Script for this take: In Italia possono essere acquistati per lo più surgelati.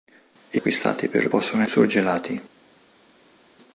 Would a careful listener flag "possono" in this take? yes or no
yes